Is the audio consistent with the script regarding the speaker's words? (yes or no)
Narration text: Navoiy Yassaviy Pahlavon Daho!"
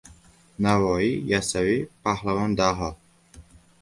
yes